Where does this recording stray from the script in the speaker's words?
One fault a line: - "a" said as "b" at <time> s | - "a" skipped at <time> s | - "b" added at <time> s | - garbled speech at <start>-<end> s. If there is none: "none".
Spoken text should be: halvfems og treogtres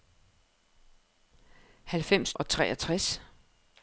none